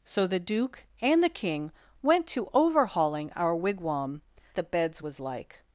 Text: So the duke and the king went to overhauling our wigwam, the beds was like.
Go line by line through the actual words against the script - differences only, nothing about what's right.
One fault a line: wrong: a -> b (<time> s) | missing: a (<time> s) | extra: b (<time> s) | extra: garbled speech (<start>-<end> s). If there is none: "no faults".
no faults